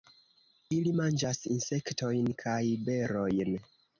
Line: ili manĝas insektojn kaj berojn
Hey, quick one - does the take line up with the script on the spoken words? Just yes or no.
yes